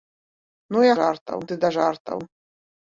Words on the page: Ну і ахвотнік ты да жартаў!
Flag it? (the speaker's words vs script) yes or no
yes